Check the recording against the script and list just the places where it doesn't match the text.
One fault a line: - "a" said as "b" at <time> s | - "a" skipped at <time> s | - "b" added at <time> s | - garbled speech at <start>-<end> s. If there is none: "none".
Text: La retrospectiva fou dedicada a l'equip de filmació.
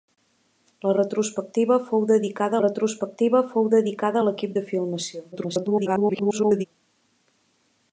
- "retrospectiva fou dedicada" added at 2.6 s
- garbled speech at 5.3-6.7 s